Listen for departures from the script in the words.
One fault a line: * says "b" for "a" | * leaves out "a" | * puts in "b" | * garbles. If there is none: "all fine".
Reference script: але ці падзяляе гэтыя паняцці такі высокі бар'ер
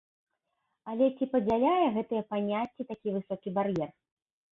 all fine